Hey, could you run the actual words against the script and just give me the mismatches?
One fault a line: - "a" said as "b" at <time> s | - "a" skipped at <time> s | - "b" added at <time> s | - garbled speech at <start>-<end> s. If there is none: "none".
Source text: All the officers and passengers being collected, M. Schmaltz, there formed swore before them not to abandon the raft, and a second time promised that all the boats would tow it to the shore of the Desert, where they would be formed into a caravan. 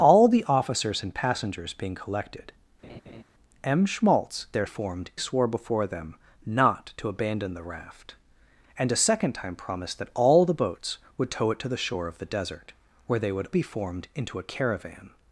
none